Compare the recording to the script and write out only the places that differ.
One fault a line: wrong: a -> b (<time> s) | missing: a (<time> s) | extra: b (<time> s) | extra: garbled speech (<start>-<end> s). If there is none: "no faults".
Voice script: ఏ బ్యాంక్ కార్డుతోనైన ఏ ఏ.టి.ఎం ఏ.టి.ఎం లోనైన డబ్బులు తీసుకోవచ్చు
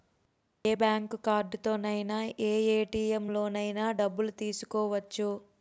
missing: ఏ.టి.ఎం (3.3 s)